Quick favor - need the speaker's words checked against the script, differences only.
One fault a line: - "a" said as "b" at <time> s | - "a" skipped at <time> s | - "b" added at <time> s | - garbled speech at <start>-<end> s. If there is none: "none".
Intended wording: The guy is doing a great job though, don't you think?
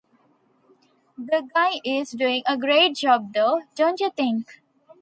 none